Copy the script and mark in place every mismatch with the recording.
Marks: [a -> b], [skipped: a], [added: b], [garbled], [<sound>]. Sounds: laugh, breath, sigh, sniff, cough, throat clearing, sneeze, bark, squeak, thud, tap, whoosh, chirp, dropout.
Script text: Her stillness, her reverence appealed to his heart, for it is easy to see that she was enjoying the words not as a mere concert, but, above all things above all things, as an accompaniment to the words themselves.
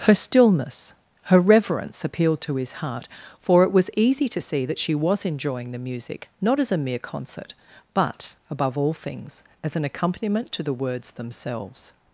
Her stillness, her reverence appealed to his heart, for it [is -> was] easy to see that she was enjoying the [words -> music] not as a mere concert, but, above all things [skipped: above all things,] as an accompaniment to the words themselves.